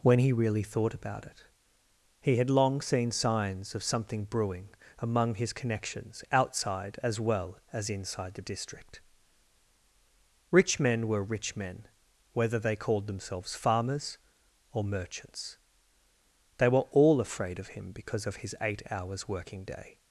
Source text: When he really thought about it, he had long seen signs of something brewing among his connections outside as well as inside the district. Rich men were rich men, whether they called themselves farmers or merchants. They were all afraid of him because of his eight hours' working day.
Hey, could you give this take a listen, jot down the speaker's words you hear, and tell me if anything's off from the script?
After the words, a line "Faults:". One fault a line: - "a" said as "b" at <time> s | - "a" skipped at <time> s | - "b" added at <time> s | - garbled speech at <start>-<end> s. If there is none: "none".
When he really thought about it, he had long seen signs of something brewing among his connections outside as well as inside the district. Rich men were rich men, whether they called themselves farmers or merchants. They were all afraid of him because of his eight hours' working day.
Faults:
none